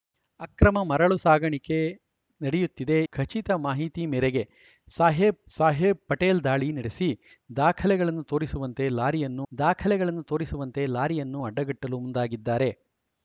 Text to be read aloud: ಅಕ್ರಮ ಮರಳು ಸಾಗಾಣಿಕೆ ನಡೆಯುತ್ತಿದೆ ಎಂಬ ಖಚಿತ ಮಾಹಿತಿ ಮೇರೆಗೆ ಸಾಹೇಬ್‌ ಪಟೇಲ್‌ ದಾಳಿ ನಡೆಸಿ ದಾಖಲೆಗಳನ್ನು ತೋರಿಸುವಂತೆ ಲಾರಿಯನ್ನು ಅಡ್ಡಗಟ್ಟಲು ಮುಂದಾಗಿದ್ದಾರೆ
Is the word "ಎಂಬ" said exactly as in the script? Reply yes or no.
no